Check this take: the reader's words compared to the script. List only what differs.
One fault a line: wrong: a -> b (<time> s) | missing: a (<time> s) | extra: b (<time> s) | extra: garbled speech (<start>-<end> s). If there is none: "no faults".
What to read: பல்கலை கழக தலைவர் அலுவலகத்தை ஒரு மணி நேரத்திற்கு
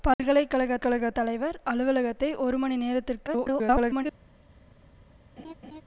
extra: கழக (0.8 s)
extra: garbled speech (3.3-4.1 s)